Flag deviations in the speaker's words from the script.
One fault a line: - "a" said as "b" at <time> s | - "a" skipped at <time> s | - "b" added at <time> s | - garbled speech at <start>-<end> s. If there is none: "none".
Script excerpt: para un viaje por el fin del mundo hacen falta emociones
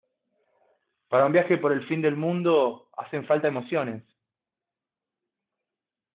none